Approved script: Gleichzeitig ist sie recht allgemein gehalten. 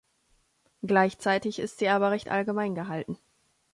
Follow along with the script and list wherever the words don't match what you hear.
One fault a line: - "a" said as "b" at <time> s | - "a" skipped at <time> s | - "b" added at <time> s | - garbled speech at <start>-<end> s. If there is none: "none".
- "aber" added at 1.9 s